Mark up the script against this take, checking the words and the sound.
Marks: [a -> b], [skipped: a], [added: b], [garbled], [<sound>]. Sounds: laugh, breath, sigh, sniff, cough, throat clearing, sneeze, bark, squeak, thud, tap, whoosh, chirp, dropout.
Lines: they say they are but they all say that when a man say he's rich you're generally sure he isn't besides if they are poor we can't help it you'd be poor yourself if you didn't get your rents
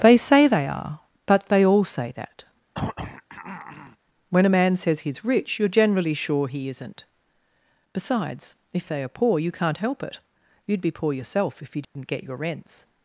they say they are but they all say that [throat clearing] when a man [say -> says] he's rich you're generally sure he isn't besides if they are poor [we -> you] can't help it you'd be poor yourself if you didn't [dropout] get your rents